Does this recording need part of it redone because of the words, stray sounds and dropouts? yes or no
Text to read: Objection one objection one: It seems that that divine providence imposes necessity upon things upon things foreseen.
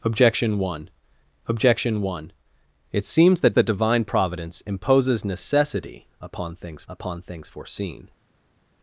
no